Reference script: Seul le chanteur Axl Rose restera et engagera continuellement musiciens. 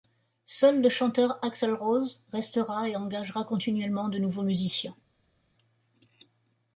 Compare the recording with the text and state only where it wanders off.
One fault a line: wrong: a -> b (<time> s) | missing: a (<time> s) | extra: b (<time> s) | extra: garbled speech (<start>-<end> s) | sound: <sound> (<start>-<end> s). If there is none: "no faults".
extra: de nouveaux (4.1 s)